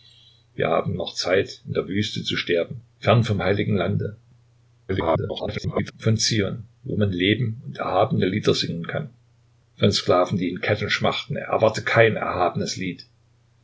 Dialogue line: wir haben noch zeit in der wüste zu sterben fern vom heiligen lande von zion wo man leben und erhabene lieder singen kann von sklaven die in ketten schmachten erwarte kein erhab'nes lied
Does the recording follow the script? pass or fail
fail